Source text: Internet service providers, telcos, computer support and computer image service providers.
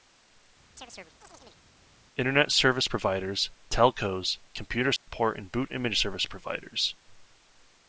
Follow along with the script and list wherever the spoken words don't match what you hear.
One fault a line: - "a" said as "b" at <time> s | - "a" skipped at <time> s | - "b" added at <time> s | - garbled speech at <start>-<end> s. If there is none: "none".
- "computer" said as "boot" at 5.5 s